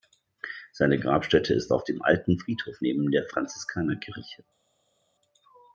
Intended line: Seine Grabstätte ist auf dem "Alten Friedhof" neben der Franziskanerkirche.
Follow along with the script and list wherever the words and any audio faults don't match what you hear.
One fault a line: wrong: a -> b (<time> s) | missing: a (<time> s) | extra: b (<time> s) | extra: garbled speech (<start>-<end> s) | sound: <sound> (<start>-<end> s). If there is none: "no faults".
no faults